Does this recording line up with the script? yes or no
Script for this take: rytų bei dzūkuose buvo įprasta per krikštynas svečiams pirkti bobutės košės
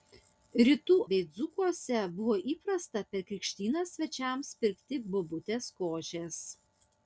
yes